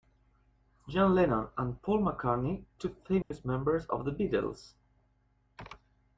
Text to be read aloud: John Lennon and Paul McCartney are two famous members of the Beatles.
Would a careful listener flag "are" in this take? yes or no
yes